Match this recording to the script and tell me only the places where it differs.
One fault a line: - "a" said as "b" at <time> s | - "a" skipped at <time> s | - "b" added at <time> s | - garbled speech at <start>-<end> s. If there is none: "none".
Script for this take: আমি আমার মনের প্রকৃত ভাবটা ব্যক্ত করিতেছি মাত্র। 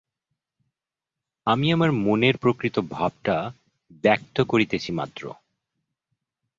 none